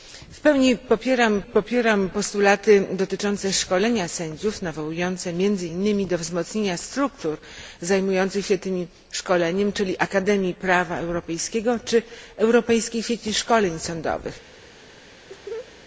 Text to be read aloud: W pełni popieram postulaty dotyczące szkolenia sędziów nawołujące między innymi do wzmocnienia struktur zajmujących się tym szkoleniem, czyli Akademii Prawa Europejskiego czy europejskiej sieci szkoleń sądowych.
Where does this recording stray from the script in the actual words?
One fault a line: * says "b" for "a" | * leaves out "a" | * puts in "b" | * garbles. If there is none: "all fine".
* puts in "popieram"